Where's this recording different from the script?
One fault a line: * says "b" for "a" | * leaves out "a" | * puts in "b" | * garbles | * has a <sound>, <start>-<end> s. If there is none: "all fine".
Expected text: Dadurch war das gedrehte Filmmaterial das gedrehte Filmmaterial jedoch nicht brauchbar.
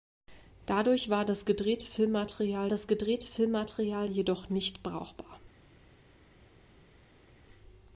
all fine